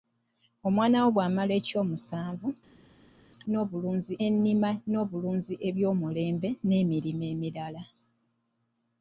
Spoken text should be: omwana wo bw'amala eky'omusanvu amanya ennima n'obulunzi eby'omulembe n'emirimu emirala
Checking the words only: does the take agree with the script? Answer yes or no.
no